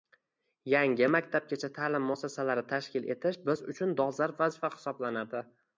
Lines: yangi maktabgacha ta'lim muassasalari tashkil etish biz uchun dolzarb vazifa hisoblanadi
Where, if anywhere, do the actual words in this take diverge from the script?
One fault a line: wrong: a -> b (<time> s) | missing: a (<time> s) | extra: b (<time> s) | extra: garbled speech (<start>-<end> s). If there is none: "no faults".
no faults